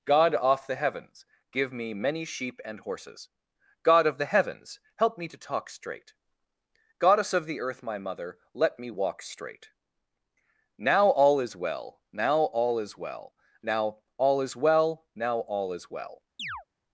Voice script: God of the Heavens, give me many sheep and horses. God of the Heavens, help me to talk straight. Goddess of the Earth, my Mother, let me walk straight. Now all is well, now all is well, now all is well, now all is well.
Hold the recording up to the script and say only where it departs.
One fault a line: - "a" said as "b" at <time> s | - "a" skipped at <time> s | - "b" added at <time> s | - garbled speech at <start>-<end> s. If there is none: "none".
- "of" said as "off" at 0.3 s